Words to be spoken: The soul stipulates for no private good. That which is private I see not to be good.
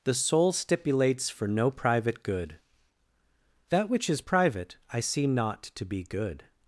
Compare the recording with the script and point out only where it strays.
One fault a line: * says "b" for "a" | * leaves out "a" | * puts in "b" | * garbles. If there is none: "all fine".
all fine